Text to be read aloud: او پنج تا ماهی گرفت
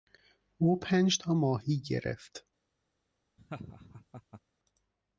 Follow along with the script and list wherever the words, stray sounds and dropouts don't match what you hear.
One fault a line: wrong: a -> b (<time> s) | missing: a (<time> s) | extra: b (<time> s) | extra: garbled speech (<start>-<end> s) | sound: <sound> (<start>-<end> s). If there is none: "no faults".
sound: laugh (3.4-4.4 s)